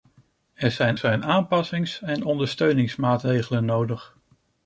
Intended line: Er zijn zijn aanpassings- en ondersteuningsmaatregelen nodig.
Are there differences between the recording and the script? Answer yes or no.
no